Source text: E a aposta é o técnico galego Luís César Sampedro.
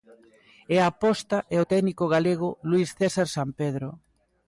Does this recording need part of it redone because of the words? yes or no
no